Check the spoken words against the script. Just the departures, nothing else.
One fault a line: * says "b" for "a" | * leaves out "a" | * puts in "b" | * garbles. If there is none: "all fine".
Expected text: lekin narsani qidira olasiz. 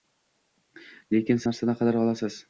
all fine